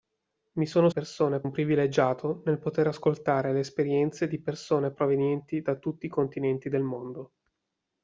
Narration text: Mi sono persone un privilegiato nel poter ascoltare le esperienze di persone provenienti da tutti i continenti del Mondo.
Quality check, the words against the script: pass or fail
pass